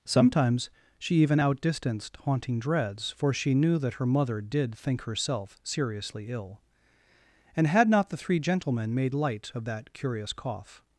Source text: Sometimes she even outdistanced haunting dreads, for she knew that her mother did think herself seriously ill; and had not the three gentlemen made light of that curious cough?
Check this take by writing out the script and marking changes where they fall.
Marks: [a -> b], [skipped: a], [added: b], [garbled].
Sometimes she even outdistanced haunting dreads, for she knew that her mother did think herself seriously ill; and had not the three gentlemen made light of that curious cough?